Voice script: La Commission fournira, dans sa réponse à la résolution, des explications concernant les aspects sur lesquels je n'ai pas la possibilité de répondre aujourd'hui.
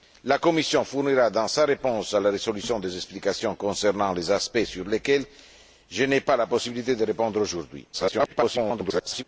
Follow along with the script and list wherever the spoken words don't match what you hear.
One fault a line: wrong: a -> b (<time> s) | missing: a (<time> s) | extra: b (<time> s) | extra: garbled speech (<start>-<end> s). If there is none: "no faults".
extra: garbled speech (7.9-9.2 s)